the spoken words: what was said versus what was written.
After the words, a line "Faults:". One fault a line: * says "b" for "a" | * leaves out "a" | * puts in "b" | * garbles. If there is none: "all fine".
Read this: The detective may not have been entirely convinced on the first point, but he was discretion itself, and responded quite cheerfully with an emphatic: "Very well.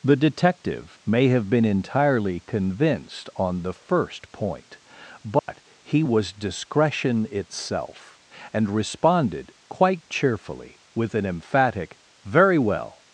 The detective may have been entirely convinced on the first point, but he was discretion itself, and responded quite cheerfully with an emphatic: "Very well.
Faults:
* leaves out "not"